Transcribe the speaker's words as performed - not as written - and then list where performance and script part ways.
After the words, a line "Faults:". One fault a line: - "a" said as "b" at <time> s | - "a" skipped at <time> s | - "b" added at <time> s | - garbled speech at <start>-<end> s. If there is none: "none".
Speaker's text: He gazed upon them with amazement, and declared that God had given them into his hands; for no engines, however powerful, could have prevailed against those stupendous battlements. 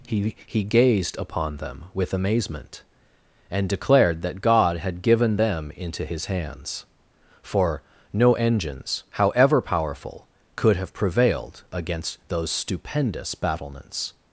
He he gazed upon them with amazement, and declared that God had given them into his hands; for no engines, however powerful, could have prevailed against those stupendous battlements.
Faults:
- "he" added at 0.5 s